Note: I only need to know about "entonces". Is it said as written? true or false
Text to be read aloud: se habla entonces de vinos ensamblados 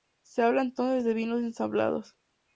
true